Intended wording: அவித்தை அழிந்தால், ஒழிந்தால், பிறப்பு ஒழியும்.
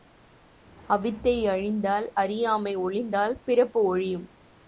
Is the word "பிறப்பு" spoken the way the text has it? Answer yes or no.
yes